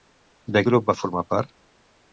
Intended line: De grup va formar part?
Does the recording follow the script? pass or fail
pass